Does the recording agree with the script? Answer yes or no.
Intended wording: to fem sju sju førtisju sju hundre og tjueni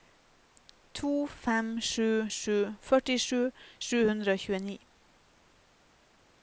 yes